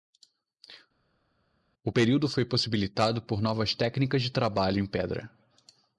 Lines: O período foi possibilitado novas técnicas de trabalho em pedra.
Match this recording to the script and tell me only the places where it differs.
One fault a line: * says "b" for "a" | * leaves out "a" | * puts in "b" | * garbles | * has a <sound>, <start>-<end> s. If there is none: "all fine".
* puts in "por"